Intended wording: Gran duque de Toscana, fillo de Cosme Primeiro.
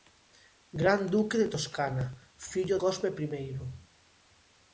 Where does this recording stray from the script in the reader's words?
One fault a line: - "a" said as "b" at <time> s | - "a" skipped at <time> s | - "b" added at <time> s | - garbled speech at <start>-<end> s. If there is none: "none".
- "de" skipped at 2.8 s